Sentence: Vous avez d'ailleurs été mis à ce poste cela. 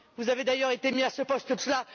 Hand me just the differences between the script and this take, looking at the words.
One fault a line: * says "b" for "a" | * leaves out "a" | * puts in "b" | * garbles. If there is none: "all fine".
all fine